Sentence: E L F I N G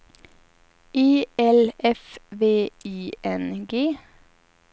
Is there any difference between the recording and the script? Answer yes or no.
yes